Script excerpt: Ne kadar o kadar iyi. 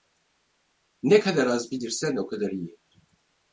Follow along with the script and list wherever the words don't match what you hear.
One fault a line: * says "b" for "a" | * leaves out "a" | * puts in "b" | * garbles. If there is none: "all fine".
* puts in "az bilirsen"